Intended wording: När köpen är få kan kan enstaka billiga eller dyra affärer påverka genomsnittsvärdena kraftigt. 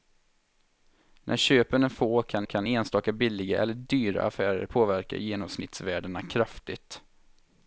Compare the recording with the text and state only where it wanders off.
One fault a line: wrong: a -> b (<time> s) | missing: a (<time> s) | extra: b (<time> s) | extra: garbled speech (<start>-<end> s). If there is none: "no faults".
no faults